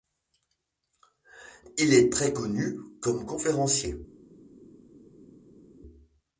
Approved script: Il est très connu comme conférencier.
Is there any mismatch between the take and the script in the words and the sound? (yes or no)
no